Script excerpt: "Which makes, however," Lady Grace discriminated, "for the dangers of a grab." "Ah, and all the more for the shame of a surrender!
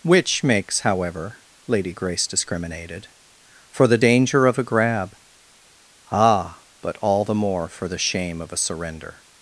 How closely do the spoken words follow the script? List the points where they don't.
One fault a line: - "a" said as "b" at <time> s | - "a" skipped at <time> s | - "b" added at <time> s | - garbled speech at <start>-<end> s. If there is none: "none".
- "dangers" said as "danger" at 4.0 s
- "and" said as "but" at 6.8 s